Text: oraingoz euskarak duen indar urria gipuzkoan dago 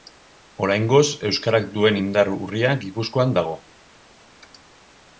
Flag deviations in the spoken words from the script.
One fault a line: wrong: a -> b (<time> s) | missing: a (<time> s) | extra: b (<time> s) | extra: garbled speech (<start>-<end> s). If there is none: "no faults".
no faults